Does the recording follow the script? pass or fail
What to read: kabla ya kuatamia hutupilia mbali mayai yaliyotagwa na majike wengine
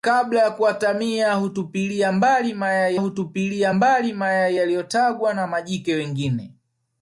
fail